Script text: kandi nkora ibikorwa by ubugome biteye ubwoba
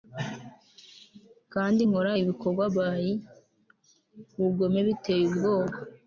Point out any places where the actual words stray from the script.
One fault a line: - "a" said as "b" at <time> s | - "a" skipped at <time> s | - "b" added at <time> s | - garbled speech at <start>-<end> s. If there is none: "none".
none